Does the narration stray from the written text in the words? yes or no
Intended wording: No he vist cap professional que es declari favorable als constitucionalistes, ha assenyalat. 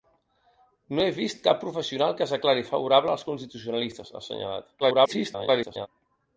yes